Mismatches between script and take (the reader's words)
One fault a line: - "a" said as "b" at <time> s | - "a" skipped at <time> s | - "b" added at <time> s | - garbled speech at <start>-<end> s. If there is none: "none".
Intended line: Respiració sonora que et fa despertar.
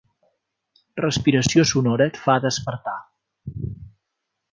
- "que" skipped at 2.1 s